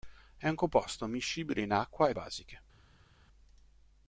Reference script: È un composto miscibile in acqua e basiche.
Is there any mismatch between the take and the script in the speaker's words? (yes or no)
no